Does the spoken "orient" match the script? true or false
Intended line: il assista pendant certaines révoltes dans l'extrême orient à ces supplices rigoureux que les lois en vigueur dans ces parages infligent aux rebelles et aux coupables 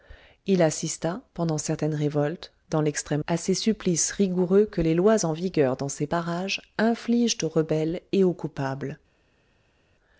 false